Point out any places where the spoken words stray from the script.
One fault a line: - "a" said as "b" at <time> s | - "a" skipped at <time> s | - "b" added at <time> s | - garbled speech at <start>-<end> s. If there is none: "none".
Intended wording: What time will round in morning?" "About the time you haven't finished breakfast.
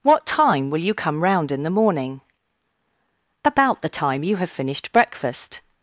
- "you come" added at 0.8 s
- "the" added at 1.6 s
- "haven't" said as "have" at 4.4 s